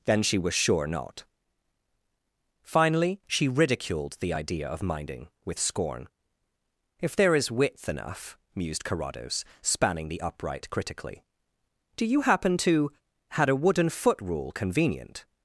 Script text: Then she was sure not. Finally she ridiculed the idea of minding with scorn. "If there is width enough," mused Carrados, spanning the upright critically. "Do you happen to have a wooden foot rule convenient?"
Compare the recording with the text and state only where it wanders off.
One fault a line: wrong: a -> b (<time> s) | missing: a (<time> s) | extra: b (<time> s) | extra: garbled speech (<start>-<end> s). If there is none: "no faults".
wrong: have -> had (13.3 s)